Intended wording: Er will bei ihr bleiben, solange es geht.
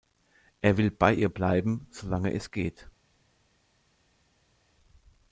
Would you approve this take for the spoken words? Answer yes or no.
yes